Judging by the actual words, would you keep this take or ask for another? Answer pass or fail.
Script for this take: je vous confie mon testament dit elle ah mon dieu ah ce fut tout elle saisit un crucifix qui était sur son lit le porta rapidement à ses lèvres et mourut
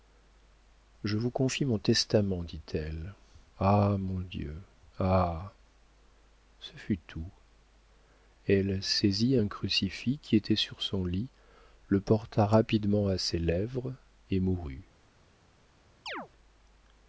pass